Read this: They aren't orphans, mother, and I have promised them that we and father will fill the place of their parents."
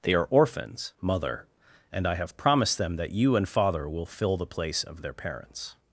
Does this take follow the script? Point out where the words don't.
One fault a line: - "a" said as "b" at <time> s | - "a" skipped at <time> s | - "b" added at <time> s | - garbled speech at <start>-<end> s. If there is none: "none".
- "aren't" said as "are" at 0.1 s
- "we" said as "you" at 3.1 s